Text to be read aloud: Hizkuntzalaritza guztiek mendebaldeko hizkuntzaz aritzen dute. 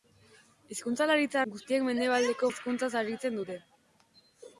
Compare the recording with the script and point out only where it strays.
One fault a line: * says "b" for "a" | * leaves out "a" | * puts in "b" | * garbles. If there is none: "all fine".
all fine